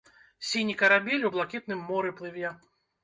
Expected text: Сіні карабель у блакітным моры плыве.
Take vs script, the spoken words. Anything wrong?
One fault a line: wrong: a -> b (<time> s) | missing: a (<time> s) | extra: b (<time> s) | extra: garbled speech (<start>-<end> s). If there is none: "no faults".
no faults